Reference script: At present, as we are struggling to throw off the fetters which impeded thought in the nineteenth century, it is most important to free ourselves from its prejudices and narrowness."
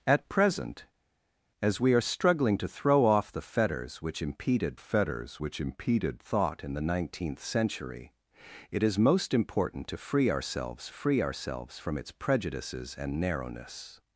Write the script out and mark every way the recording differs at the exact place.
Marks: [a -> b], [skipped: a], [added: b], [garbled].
At present, as we are struggling to throw off the fetters which impeded [added: fetters which impeded] thought in the nineteenth century, it is most important to free ourselves [added: free ourselves] from its prejudices and narrowness."